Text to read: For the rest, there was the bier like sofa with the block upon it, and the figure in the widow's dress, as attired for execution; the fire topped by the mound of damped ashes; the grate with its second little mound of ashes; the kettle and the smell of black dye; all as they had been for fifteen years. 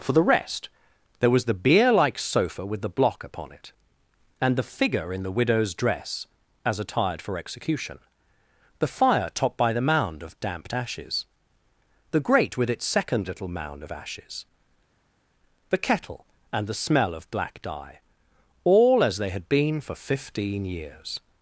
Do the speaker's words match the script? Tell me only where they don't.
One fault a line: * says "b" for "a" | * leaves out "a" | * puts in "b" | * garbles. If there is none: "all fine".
all fine